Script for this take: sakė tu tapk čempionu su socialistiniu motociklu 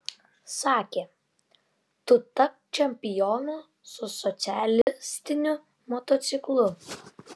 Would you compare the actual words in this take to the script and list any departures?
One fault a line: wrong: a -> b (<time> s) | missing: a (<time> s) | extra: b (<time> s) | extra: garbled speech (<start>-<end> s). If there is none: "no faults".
no faults